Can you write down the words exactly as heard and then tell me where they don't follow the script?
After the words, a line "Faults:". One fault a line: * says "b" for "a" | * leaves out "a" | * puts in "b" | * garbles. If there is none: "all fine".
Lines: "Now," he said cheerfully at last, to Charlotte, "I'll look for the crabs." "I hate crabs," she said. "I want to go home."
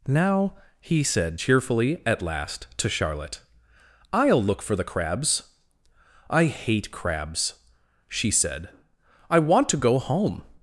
"Now," he said cheerfully at last, to Charlotte, "I'll look for the crabs." "I hate crabs," she said. "I want to go home."
Faults:
all fine